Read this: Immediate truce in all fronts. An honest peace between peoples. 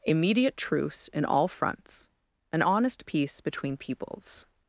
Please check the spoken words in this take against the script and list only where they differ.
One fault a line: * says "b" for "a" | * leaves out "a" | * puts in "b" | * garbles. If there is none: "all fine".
all fine